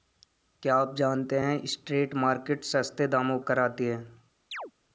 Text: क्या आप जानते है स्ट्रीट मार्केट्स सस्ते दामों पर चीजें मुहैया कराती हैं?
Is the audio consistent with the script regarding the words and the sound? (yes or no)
no